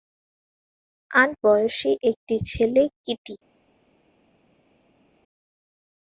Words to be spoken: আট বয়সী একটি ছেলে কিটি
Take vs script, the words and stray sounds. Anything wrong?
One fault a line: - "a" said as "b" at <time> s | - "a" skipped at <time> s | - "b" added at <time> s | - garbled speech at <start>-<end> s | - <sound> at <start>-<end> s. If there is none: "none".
none